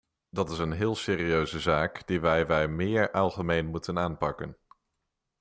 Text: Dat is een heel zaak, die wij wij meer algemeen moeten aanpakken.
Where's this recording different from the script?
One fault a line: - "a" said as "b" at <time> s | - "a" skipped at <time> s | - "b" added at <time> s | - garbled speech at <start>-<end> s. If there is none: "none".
- "serieuze" added at 0.9 s